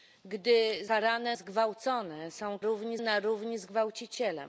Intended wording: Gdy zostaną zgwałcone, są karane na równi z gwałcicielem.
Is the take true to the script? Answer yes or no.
no